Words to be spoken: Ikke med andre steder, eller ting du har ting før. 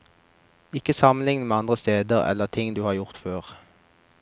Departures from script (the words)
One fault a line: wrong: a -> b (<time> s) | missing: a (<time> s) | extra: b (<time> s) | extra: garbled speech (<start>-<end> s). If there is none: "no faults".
extra: sammenligne (0.9 s)
wrong: ting -> gjort (2.9 s)